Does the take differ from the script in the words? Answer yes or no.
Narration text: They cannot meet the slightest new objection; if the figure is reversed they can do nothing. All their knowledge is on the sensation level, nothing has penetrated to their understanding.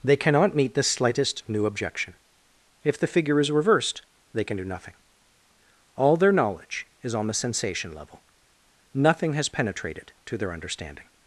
no